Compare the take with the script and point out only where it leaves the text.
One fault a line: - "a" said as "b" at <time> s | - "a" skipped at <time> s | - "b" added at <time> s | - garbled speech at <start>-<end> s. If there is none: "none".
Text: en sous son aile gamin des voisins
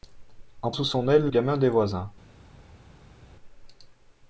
none